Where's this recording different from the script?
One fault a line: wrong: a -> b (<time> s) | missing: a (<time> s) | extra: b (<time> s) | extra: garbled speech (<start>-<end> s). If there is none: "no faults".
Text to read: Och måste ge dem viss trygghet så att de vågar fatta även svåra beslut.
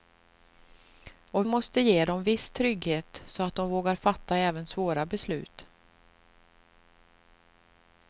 no faults